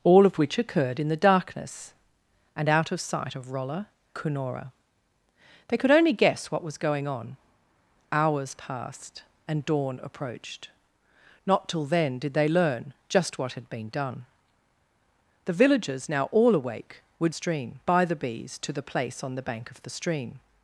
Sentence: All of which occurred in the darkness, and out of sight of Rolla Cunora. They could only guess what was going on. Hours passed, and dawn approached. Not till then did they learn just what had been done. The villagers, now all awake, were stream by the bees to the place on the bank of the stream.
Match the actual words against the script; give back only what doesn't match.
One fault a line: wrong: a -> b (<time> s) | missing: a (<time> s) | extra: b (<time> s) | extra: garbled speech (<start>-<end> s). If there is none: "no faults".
no faults